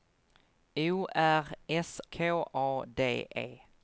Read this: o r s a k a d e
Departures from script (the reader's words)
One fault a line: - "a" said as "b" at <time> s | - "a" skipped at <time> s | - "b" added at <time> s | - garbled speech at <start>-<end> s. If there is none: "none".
- "a" skipped at 2.0 s